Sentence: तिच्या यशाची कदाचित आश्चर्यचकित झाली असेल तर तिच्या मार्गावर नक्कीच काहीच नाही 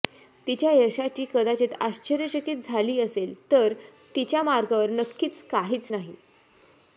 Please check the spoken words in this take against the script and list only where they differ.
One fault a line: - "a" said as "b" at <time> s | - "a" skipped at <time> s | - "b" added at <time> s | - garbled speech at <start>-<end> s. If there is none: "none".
none